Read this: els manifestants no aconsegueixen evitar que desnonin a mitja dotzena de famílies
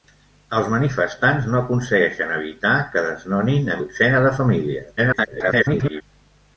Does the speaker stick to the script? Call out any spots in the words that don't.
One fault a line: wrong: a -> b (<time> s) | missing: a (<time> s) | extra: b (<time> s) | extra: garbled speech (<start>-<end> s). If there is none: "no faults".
missing: mitja (3.8 s)
extra: garbled speech (5.0-6.0 s)